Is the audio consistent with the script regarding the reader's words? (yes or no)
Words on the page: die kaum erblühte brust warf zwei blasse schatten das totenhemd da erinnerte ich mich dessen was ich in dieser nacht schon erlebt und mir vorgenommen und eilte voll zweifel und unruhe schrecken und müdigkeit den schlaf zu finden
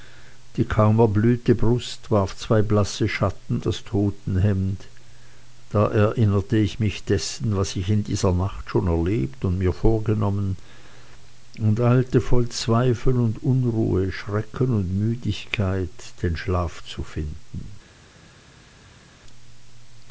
yes